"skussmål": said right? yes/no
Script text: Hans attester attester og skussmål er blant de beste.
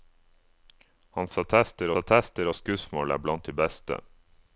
yes